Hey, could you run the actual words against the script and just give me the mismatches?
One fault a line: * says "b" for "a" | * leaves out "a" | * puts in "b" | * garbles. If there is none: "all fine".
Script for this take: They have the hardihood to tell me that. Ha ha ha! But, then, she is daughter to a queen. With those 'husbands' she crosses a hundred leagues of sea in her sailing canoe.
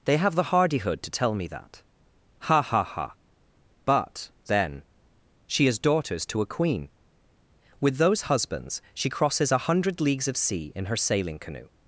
* says "daughters" for "daughter"